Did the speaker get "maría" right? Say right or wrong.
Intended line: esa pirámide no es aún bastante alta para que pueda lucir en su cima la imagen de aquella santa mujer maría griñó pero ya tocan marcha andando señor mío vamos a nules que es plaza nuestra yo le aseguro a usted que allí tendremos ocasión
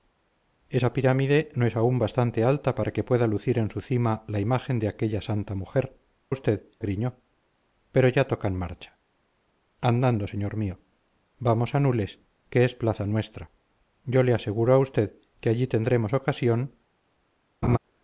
wrong